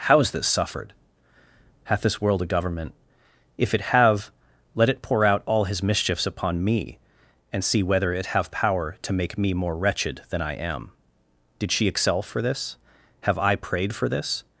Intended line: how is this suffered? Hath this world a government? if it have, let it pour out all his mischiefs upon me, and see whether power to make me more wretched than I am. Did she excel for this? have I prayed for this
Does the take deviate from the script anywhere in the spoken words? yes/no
yes